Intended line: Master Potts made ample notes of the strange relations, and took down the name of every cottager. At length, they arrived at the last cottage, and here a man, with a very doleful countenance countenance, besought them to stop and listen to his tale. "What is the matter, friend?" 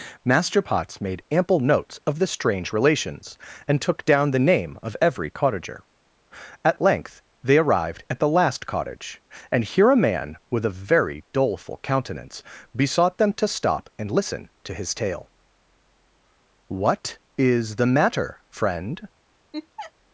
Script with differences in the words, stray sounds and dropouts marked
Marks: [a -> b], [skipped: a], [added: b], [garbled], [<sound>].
Master Potts made ample notes of the strange relations, and took down the name of every cottager. At length, they arrived at the last cottage, and here a man, with a very doleful countenance [skipped: countenance,] besought them to stop and listen to his tale. "What is the matter, friend?" [laugh]